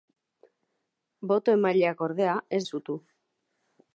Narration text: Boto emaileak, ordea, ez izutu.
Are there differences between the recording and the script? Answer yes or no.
no